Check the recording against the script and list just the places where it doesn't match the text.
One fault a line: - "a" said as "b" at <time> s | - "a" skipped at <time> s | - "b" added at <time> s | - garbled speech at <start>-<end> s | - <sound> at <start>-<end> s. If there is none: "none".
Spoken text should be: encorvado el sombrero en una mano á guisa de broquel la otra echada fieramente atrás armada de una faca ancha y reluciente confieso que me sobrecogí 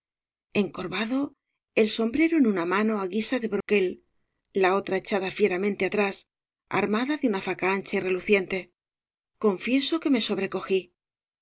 - dropout at 3.6-3.7 s